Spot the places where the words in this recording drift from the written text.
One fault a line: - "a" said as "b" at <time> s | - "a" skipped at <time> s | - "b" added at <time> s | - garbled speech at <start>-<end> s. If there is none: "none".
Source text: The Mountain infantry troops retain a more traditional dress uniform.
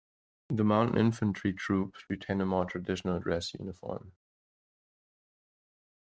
none